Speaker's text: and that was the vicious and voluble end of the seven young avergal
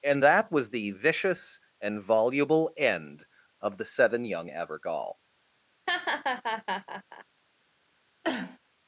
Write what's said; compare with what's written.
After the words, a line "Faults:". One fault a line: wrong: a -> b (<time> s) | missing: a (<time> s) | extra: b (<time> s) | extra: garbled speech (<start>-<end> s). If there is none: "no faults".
and that was the vicious and voluble end of the seven young avergal
Faults:
no faults